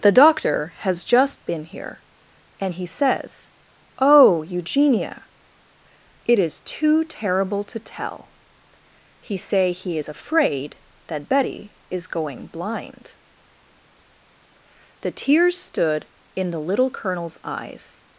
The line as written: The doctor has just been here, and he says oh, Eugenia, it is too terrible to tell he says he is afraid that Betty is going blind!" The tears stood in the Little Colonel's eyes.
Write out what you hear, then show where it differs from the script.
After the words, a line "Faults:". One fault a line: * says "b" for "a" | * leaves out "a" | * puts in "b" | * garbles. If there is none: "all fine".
The doctor has just been here, and he says oh, Eugenia, it is too terrible to tell he say he is afraid that Betty is going blind!" The tears stood in the Little Colonel's eyes.
Faults:
* says "say" for "says"